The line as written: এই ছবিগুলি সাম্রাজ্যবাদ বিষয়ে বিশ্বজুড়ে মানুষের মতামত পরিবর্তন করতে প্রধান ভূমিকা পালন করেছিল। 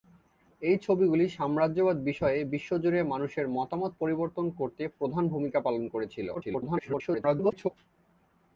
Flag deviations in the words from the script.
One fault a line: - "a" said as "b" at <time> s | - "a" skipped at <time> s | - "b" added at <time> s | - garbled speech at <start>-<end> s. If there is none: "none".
- garbled speech at 6.3-7.7 s